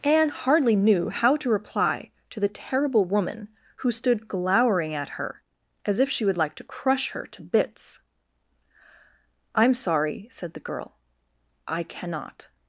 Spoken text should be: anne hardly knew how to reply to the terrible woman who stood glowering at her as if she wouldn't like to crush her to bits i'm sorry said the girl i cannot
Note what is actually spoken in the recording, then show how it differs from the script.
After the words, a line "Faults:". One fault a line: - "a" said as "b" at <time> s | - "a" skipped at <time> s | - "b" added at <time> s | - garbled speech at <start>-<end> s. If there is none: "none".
anne hardly knew how to reply to the terrible woman who stood glowering at her as if she would like to crush her to bits i'm sorry said the girl i cannot
Faults:
- "wouldn't" said as "would" at 6.3 s